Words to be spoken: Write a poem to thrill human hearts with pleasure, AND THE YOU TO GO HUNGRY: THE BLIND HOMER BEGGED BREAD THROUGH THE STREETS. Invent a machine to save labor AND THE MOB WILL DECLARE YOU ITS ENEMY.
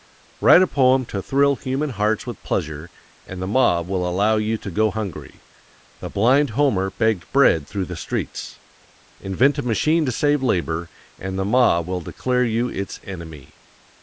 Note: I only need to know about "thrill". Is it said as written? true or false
true